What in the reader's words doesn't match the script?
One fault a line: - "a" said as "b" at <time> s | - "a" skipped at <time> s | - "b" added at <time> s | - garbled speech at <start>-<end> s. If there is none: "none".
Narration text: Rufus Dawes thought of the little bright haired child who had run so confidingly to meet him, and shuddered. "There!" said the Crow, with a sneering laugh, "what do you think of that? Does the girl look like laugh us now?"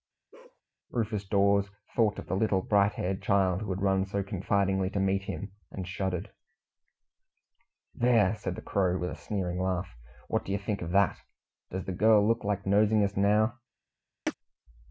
- "laugh" said as "nosing" at 12.7 s